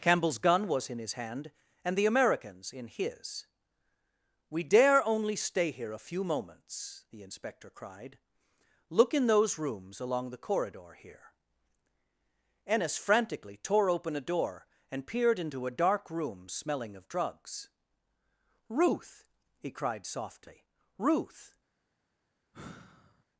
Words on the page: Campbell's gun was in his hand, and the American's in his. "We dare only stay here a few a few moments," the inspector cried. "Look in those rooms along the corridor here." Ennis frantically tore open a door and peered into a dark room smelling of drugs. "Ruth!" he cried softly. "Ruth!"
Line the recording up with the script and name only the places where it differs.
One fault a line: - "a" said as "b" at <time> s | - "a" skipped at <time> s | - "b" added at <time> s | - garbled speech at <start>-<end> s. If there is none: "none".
- "a few" skipped at 6.2 s